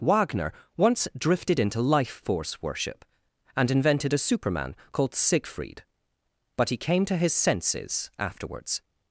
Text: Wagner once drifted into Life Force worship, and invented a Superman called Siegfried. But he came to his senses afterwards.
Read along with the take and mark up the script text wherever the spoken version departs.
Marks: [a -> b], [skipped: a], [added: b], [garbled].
Wagner once drifted into Life Force worship, and invented a Superman called Siegfried. But he came to his senses afterwards.